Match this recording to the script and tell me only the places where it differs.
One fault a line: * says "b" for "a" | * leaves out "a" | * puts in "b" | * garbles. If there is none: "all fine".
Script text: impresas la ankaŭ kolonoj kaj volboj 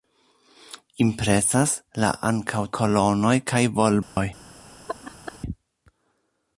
all fine